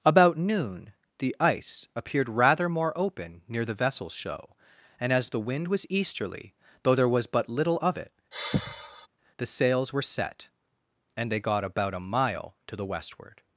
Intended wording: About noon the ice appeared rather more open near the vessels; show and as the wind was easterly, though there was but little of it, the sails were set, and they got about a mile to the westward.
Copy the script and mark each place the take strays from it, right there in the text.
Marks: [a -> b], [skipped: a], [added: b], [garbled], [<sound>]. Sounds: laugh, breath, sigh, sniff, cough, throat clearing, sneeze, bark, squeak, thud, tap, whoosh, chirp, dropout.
About noon the ice appeared rather more open near the vessels; show and as the wind was easterly, though there was but little of it, [sigh] the sails were set, and they got about a mile to the westward.